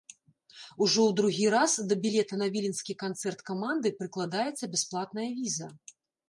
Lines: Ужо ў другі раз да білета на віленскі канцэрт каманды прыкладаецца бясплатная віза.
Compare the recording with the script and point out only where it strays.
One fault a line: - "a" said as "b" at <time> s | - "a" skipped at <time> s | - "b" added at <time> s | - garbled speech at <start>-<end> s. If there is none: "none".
none